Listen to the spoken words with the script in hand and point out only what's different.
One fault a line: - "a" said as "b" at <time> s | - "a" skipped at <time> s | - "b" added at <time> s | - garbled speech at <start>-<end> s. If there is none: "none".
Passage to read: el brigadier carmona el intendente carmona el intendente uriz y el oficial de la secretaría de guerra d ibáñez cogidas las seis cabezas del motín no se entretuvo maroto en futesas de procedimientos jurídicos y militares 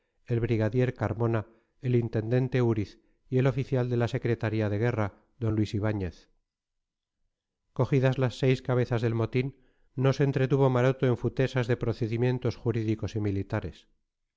- "carmona el intendente" skipped at 2.6 s
- "luis" added at 5.5 s